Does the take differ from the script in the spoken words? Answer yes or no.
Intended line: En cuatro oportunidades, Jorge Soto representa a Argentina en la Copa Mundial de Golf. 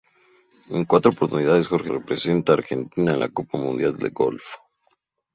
yes